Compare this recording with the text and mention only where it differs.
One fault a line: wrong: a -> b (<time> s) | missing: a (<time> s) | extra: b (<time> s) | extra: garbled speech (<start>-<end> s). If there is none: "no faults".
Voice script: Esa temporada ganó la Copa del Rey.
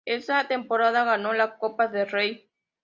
no faults